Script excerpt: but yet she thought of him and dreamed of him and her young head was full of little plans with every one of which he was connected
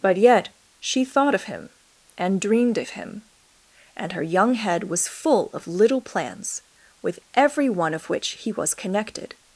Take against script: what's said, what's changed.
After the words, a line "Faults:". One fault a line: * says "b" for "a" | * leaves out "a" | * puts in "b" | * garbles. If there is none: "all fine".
but yet she thought of him and dreamed of him and her young head was full of little plans with every one of which he was connected
Faults:
all fine